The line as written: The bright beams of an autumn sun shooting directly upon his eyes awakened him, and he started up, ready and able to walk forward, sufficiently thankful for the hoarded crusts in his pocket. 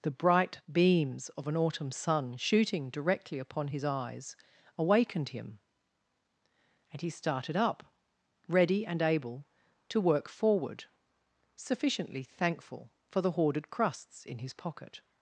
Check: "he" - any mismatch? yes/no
no